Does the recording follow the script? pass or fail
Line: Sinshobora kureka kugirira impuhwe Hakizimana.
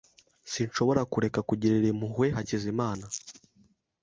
pass